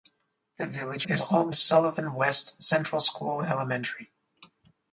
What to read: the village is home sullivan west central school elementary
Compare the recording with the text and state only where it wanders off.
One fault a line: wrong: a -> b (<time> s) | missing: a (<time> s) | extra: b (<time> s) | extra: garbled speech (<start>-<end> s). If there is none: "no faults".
no faults